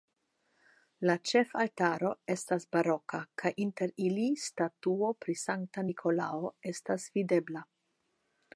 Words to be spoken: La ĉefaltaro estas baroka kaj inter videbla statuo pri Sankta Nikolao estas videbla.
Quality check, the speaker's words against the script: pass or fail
fail